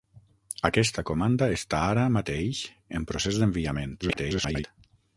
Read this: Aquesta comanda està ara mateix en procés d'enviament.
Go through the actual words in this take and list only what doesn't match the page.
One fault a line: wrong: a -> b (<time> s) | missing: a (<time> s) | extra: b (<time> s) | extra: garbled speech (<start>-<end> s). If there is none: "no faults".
extra: garbled speech (4.0-4.6 s)